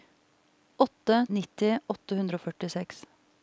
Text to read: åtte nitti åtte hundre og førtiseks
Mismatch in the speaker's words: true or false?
false